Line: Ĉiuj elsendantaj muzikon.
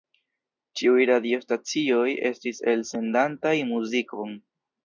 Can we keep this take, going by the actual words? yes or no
no